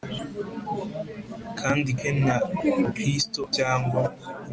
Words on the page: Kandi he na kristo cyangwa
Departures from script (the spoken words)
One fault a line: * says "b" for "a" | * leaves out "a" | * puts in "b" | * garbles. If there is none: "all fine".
all fine